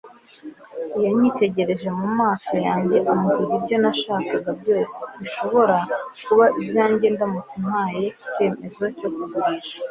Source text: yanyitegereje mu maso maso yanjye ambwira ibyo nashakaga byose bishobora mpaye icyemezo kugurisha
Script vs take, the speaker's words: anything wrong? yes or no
yes